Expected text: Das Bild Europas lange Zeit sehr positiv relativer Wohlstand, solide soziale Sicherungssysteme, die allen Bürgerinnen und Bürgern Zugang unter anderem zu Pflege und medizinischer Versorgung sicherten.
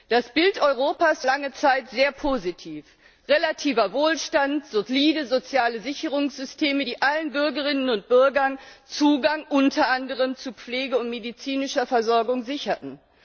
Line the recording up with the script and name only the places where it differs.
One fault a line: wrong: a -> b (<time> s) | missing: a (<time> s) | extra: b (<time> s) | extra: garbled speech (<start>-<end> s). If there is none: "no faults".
no faults